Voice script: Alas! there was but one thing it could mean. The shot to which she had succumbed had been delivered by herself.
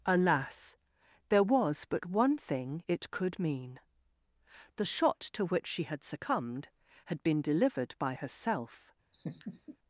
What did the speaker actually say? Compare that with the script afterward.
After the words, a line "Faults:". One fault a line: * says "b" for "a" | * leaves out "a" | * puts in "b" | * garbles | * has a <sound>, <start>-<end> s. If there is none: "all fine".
Alas! there was but one thing it could mean. The shot to which she had succumbed had been delivered by herself.
Faults:
* has a laugh, 9.1-9.8 s